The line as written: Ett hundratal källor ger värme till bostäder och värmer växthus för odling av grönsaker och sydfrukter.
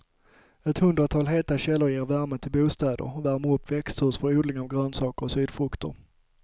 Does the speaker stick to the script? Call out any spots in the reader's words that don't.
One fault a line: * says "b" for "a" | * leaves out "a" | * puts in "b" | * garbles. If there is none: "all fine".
* puts in "heta"
* puts in "upp"